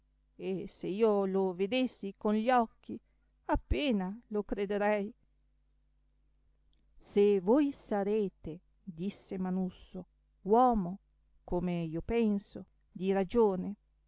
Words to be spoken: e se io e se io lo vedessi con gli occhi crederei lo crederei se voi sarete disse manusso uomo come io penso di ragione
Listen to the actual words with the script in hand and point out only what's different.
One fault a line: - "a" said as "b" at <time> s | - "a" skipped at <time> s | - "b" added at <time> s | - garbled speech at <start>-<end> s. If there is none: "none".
- "e se io" skipped at 1.2 s
- "crederei" said as "appena" at 3.5 s